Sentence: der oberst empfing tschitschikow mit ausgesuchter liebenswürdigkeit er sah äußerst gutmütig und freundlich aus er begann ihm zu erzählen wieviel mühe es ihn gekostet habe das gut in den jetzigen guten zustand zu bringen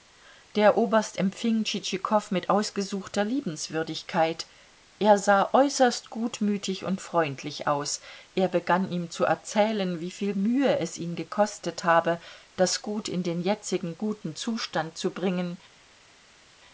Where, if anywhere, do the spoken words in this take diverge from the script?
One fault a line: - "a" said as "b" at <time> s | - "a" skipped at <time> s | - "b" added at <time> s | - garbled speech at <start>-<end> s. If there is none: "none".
none